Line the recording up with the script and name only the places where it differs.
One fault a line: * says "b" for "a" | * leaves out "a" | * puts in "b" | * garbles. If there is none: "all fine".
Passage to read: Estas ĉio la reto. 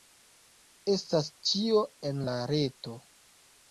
* puts in "en"